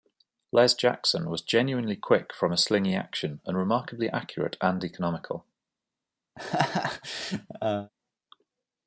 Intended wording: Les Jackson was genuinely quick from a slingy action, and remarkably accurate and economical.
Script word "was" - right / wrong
right